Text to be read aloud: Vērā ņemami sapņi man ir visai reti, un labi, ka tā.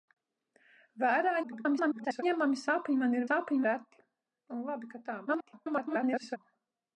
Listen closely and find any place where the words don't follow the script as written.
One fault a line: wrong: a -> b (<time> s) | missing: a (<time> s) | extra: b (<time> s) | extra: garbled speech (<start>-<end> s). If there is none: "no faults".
extra: garbled speech (1.4-2.2 s)
wrong: visai -> sapņi (3.2 s)
extra: garbled speech (5.3-6.4 s)